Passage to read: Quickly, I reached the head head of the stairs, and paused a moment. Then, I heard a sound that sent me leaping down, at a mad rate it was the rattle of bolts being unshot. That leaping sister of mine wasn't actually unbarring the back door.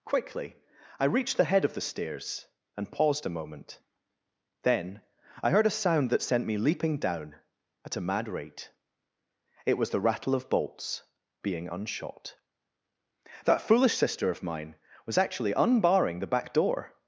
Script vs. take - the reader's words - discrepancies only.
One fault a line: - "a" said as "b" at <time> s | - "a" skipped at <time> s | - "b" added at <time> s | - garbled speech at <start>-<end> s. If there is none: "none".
- "head" skipped at 1.6 s
- "leaping" said as "foolish" at 13.6 s
- "wasn't" said as "was" at 15.0 s